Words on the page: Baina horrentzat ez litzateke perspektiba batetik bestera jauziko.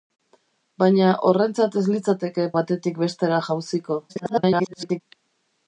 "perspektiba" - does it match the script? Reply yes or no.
no